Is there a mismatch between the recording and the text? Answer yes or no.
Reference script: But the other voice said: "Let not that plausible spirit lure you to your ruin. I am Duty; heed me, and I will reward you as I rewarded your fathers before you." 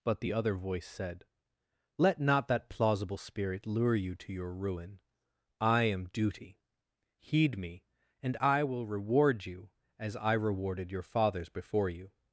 no